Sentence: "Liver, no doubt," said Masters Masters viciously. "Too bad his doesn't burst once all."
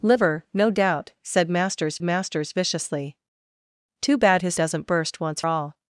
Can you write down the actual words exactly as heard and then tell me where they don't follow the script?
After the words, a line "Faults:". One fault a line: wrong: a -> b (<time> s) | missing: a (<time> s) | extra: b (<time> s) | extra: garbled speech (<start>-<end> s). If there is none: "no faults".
"Liver, no doubt," said Masters Masters viciously. "Too bad his doesn't burst once all."
Faults:
no faults